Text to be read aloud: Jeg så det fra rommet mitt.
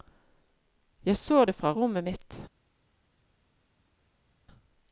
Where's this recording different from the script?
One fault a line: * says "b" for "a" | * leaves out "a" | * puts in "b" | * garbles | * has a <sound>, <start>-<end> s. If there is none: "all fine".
all fine